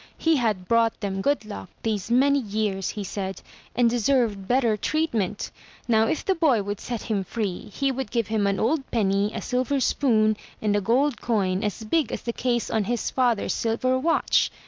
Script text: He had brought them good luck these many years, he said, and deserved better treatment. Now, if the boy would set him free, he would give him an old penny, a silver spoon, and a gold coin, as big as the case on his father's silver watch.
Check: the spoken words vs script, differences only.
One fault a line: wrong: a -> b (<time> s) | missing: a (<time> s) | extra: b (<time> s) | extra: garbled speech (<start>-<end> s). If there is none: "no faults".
no faults